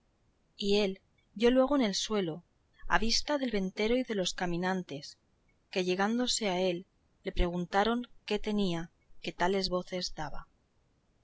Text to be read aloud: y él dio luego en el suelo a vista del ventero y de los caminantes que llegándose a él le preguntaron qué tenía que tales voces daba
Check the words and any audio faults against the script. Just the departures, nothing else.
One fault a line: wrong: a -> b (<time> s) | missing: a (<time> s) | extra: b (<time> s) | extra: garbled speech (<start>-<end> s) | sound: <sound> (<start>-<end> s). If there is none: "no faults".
no faults